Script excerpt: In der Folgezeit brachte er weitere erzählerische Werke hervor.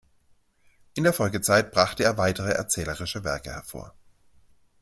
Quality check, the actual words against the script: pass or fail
pass